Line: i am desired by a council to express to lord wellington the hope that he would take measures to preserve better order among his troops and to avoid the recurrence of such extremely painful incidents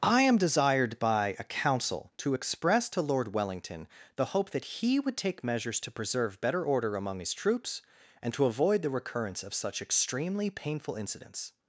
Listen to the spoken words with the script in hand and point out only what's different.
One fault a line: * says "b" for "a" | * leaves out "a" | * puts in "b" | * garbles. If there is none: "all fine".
all fine